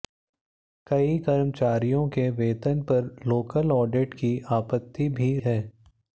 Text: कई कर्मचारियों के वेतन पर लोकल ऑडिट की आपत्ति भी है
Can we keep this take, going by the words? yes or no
yes